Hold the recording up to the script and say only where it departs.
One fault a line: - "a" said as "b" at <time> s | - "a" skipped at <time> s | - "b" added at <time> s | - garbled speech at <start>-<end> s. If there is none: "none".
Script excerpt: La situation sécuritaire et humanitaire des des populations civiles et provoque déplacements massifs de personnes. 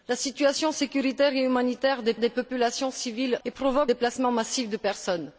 none